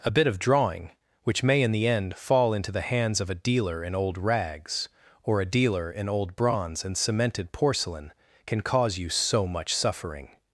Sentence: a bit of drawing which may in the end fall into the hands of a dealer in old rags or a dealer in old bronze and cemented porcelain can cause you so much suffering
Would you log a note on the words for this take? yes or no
no